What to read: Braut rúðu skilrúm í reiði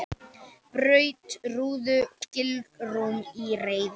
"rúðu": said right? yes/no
yes